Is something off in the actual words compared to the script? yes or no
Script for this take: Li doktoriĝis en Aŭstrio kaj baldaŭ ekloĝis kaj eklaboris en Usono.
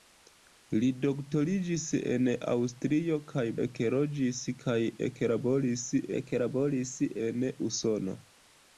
yes